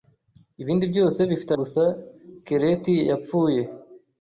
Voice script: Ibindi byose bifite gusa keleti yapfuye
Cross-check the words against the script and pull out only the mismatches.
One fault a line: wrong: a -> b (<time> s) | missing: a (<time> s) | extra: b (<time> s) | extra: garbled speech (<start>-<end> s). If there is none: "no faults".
no faults